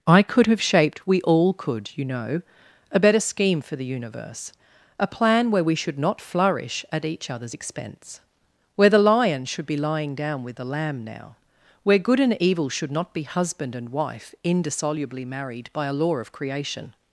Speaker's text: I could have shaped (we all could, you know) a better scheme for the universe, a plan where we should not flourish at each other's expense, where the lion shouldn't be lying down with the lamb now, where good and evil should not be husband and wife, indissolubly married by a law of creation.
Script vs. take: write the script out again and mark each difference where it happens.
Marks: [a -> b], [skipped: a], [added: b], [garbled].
I could have shaped (we all could, you know) a better scheme for the universe, a plan where we should not flourish at each other's expense, where the lion [shouldn't -> should] be lying down with the lamb now, where good and evil should not be husband and wife, indissolubly married by a law of creation.